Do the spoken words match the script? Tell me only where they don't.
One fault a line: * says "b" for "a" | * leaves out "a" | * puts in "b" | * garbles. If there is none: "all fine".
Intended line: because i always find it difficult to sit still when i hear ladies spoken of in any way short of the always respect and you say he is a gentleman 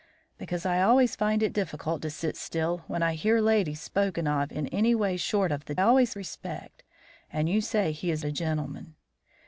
all fine